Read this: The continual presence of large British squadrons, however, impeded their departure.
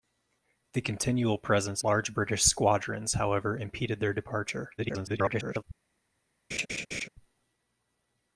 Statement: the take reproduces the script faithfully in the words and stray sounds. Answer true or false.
false